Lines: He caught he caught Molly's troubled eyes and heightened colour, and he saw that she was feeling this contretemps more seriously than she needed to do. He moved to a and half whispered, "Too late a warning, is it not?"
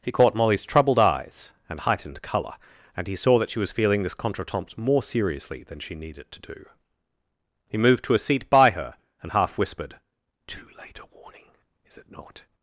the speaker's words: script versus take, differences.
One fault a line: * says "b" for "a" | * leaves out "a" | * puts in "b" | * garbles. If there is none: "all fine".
* leaves out "he caught"
* puts in "seat by her"